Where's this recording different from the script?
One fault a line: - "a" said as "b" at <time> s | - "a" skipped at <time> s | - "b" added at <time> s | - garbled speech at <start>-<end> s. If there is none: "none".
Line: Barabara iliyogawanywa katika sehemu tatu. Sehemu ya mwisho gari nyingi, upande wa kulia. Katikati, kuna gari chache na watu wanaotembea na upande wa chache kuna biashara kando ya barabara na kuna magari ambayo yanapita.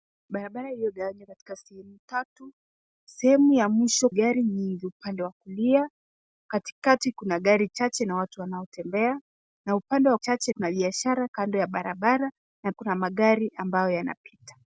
none